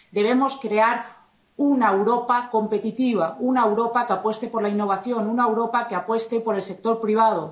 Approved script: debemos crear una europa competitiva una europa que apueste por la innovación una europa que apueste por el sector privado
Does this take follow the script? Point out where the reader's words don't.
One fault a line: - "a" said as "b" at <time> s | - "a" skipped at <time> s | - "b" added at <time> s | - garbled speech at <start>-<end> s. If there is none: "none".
none